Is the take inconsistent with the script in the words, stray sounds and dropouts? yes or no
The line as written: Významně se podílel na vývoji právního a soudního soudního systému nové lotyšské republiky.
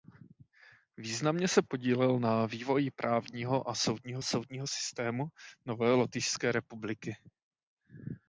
no